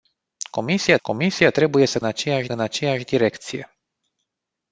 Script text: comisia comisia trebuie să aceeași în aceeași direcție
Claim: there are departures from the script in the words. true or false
false